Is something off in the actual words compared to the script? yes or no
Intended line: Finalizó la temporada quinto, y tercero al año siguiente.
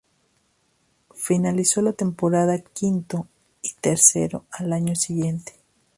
no